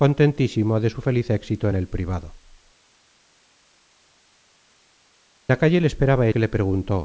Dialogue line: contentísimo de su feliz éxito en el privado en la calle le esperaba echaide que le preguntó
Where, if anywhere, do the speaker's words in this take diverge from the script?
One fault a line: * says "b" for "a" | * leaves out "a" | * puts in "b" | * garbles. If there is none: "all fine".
* leaves out "en"
* leaves out "echaide"